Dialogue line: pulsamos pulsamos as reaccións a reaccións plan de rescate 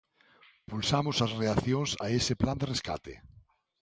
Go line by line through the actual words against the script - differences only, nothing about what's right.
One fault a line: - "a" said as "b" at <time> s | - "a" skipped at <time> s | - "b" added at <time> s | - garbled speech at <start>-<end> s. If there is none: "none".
- "pulsamos" skipped at 1.2 s
- "reaccións" said as "ese" at 2.2 s